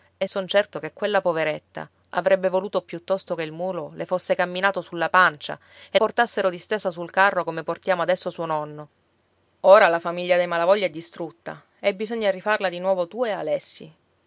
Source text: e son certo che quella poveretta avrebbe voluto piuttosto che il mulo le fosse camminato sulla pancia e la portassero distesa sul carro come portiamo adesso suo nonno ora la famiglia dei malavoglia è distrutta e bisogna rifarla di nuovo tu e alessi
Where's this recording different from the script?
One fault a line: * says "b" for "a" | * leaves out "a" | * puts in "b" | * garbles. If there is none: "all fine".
* leaves out "la"